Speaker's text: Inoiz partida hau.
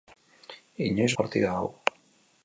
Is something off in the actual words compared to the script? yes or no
no